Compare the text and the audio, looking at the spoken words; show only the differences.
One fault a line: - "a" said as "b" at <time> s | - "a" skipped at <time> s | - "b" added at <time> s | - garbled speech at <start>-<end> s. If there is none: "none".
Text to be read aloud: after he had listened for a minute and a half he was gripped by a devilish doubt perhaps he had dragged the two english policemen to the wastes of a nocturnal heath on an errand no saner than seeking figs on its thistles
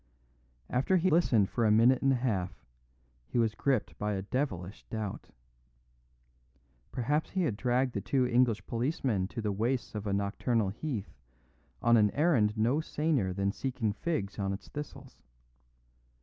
- "had" skipped at 1.1 s